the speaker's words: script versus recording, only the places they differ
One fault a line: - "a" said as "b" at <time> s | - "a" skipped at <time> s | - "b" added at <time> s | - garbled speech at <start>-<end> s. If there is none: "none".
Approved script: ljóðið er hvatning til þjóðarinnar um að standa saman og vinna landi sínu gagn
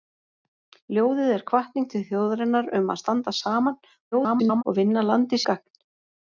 - garbled speech at 4.1-4.6 s
- "sínu" skipped at 5.4 s